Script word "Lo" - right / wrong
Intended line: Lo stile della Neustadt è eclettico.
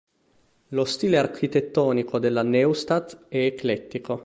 right